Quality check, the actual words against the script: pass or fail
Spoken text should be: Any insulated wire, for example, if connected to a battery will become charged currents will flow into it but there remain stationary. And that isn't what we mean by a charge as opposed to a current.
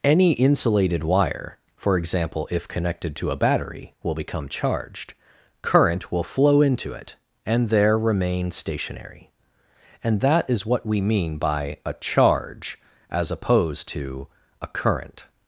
fail